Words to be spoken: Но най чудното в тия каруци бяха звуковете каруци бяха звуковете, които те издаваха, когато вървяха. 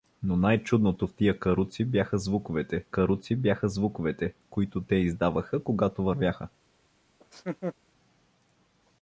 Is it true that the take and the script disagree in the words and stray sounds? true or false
true